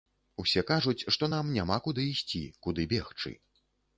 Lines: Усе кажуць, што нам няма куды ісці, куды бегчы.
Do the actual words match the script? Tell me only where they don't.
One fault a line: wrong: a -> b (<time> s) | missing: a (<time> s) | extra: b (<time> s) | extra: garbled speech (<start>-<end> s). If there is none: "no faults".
no faults